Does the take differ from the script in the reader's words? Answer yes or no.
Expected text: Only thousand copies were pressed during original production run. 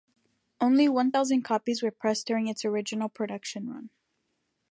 yes